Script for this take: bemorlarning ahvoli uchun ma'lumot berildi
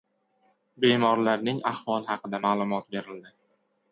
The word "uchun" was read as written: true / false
false